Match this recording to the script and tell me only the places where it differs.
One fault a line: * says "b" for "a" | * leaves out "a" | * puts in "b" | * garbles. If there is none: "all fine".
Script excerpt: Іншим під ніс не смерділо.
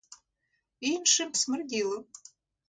* leaves out "під ніс не"